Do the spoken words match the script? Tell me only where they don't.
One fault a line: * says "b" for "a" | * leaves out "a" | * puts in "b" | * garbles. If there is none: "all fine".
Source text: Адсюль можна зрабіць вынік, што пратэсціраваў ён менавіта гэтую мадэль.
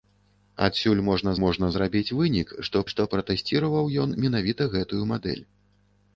* puts in "можна"
* puts in "што"